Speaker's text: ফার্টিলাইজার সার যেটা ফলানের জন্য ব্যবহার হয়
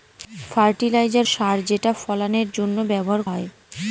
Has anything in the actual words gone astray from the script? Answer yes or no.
no